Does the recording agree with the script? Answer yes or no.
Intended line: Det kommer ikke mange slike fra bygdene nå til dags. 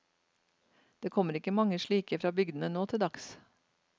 yes